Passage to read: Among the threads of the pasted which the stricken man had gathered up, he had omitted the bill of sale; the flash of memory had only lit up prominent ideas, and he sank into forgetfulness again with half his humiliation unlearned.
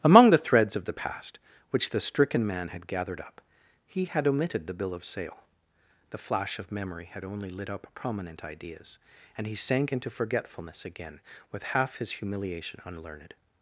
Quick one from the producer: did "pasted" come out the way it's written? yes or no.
no